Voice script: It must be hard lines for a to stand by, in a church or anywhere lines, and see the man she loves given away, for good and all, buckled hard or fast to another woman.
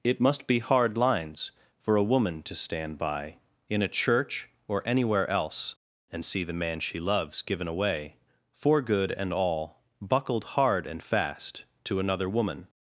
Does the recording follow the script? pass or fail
fail